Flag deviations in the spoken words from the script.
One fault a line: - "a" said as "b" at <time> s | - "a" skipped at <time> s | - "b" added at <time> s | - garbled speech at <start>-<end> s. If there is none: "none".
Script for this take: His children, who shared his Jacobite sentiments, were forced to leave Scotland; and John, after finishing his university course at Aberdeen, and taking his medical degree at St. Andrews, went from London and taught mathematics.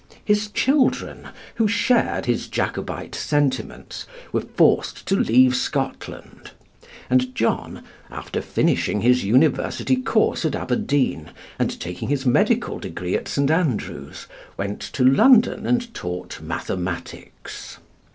- "from" said as "to" at 14.8 s